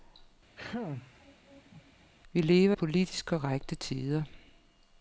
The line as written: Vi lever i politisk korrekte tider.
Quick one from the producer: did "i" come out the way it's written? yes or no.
no